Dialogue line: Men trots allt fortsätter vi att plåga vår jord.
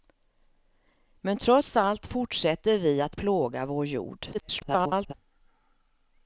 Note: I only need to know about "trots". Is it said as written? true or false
true